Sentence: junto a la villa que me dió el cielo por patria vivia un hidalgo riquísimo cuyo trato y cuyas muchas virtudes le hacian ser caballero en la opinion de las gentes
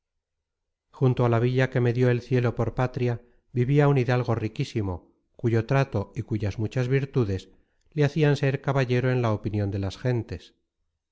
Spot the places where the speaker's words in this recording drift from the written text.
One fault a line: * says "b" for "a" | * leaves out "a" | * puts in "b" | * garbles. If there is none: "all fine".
all fine